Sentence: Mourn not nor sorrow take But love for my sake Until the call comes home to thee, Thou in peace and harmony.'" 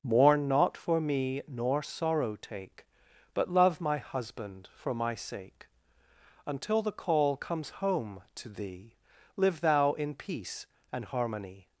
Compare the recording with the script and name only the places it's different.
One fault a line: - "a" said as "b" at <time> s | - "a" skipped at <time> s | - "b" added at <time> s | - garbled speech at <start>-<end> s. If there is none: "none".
- "for me" added at 0.8 s
- "my husband" added at 3.8 s
- "Live" added at 9.4 s